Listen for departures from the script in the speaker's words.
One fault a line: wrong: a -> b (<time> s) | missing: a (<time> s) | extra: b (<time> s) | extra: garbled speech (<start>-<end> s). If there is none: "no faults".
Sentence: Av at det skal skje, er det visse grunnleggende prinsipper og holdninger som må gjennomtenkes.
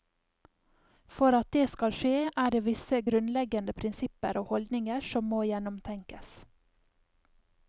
wrong: Av -> For (1.2 s)